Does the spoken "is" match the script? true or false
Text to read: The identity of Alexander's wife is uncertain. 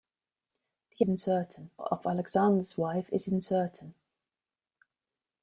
true